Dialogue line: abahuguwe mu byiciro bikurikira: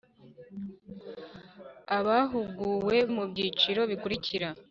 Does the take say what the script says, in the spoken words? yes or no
yes